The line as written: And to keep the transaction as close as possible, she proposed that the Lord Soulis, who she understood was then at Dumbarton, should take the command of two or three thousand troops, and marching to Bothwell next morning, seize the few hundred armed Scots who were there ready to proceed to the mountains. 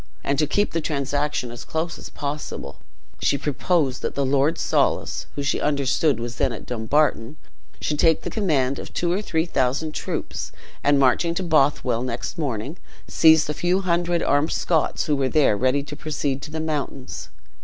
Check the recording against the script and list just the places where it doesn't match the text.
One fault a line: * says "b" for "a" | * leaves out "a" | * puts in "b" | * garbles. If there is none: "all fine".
all fine